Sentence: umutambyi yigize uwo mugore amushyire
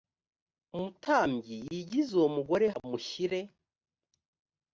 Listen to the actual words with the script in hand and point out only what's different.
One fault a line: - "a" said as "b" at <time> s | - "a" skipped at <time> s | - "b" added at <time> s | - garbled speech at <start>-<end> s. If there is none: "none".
none